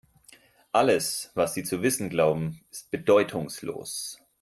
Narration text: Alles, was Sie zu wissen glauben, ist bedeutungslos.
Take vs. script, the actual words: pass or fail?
pass